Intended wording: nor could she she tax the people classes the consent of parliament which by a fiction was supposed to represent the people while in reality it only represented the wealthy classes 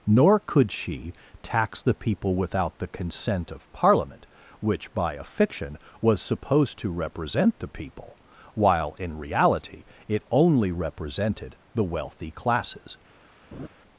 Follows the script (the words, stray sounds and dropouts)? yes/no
no